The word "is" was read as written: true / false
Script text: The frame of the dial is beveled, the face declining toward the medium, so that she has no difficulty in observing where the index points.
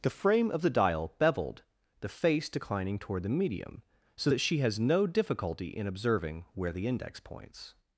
false